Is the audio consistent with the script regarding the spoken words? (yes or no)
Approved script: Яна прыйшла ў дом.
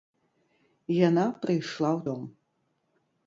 yes